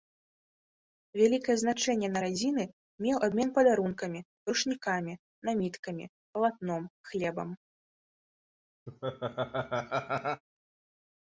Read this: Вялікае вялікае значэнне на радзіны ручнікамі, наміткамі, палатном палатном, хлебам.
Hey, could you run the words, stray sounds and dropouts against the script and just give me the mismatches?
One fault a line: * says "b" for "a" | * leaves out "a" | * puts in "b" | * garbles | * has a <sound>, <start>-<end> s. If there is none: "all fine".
* leaves out "вялікае"
* puts in "меў абмен падарункамі"
* leaves out "палатном"
* has a laugh, 8.9-10.4 s